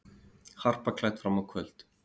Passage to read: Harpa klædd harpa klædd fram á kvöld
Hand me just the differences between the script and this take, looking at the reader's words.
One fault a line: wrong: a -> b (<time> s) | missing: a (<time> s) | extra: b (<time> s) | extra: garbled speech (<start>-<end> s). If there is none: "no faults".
missing: harpa klædd (1.2 s)